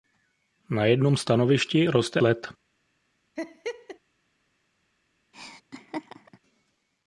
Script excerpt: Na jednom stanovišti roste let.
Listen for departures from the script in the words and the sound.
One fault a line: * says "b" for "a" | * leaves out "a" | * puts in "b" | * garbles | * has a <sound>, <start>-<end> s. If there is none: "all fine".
* has a laugh, 3.4-4.0 s
* has a laugh, 5.3-6.4 s